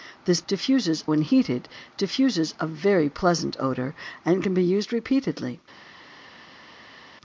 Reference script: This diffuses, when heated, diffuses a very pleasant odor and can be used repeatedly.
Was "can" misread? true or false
false